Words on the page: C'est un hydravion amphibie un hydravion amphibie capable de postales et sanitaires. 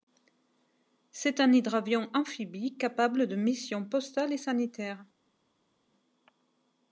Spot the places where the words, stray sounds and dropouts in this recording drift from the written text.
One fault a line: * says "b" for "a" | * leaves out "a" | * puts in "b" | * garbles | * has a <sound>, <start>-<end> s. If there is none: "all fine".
* leaves out "un hydravion amphibie"
* puts in "missions"